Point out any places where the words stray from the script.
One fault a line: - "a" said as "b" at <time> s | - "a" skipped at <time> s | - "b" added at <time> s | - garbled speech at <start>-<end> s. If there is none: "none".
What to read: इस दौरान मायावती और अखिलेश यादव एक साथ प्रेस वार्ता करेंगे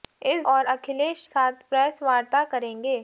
- "दौरान मायावती" skipped at 0.4 s
- "यादव एक" skipped at 1.2 s